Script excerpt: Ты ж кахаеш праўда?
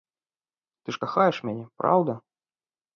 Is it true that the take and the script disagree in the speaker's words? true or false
true